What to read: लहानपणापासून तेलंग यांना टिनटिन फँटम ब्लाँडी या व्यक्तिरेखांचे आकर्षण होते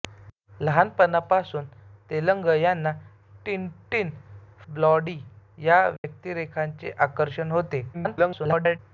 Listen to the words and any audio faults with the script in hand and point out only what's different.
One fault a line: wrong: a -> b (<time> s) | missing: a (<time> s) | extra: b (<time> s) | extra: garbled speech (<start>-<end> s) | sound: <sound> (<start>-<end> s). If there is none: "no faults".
missing: फँटम (4.1 s)
sound: dropout (6.0-6.0 s)
extra: garbled speech (7.9-8.8 s)